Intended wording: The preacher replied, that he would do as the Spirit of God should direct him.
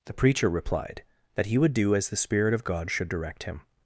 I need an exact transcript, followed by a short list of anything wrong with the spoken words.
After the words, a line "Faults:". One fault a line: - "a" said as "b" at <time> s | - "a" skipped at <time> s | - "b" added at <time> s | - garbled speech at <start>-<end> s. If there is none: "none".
The preacher replied, that he would do as the Spirit of God should direct him.
Faults:
none